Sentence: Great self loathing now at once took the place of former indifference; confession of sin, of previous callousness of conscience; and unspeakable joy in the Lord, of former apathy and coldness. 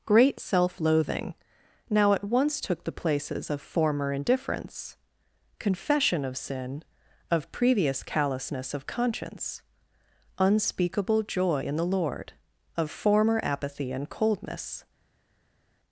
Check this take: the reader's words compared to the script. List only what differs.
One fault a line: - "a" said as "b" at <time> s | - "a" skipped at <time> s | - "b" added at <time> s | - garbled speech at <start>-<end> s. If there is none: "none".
- "place" said as "places" at 2.9 s
- "and" skipped at 9.6 s